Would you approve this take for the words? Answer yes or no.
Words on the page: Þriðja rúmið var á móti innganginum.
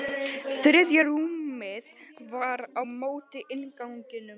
yes